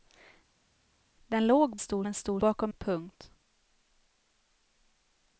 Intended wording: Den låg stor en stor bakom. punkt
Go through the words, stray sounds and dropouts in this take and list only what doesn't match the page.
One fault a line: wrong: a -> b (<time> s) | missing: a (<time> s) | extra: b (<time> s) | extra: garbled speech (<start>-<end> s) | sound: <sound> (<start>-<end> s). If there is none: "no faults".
no faults